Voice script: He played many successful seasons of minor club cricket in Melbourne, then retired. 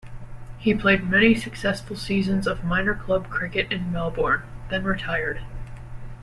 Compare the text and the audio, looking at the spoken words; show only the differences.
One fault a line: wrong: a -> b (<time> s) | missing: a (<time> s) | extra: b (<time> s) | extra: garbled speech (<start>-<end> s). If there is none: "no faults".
no faults